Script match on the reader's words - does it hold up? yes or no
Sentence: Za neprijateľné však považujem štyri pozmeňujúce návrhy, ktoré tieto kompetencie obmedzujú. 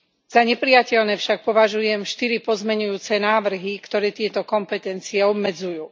yes